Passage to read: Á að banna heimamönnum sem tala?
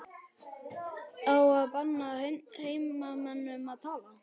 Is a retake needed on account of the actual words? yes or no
yes